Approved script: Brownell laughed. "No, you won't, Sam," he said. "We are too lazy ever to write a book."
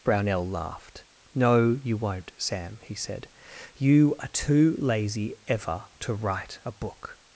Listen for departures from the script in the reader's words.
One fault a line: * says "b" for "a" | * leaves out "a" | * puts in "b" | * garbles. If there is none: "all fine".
* says "You" for "We"